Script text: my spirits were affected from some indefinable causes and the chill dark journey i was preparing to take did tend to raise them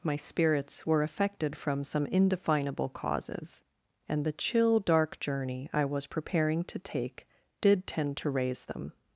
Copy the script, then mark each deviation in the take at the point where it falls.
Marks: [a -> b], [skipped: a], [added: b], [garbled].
my spirits were affected from some indefinable causes and the chill dark journey i was preparing to take did tend to raise them